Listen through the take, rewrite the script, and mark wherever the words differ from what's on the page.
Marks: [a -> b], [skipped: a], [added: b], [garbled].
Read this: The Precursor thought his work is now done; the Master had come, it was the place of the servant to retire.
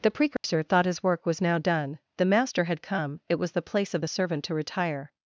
The Precursor thought his work [is -> was] now done; the Master had come, it was the place of the servant to retire.